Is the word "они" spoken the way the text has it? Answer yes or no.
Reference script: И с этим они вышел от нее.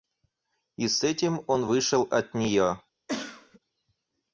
no